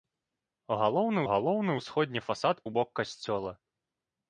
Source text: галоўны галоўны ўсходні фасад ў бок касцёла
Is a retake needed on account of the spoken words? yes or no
no